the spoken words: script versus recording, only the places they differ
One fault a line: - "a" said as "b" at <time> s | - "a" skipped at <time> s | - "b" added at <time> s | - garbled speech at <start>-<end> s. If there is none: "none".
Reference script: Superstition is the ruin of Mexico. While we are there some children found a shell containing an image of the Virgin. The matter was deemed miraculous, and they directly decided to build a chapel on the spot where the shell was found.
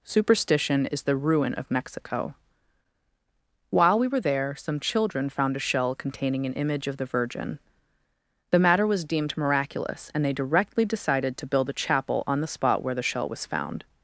- "are" said as "were" at 4.1 s